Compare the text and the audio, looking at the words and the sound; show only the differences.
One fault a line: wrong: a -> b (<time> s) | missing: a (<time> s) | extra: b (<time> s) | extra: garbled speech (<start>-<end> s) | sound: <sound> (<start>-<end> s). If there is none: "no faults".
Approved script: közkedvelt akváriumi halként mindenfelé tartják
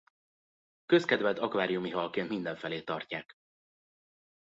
no faults